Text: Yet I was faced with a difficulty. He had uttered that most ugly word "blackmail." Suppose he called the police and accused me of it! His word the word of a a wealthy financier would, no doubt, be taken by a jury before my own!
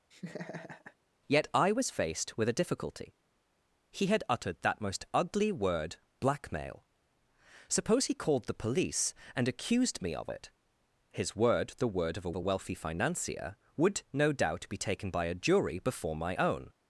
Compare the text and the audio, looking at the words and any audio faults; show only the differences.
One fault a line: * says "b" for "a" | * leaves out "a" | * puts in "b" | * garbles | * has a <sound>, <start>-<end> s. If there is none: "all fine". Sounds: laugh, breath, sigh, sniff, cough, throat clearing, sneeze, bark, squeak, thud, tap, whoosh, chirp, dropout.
* has a laugh, 0.1-1.0 s